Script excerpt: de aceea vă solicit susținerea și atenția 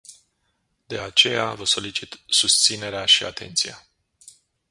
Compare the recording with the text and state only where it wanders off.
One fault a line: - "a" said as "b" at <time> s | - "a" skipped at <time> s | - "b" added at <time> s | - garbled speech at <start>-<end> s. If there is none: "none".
none